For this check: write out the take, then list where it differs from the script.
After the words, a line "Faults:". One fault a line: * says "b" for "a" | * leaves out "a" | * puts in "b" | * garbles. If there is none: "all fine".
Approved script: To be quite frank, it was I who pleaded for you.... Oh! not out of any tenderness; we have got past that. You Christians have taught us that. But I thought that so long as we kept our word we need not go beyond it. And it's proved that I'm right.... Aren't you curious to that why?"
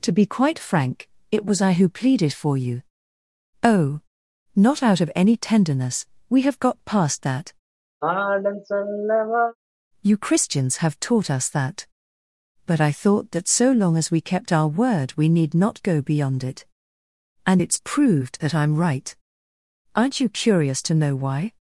To be quite frank, it was I who pleaded for you.... Oh! not out of any tenderness; we have got past that. You Christians have taught us that. But I thought that so long as we kept our word we need not go beyond it. And it's proved that I'm right.... Aren't you curious to know why?"
Faults:
* says "know" for "that"